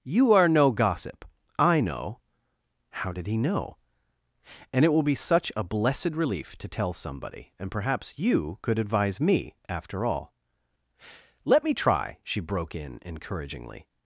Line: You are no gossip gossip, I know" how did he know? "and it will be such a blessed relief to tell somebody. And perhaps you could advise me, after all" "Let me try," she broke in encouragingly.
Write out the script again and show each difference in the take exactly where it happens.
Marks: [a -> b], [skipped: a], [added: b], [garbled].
You are no gossip [skipped: gossip,] I know" how did he know? "and it will be such a blessed relief to tell somebody. And perhaps you could advise me, after all" "Let me try," she broke in encouragingly.